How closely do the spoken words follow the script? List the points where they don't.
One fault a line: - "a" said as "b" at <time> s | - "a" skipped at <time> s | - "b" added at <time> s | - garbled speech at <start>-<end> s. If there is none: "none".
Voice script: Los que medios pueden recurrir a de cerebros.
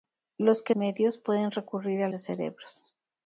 none